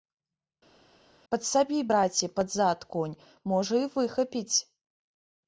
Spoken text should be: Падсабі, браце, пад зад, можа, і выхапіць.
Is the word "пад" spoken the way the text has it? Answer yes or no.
yes